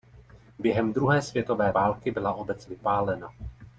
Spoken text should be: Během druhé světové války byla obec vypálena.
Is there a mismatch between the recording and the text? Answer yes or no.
no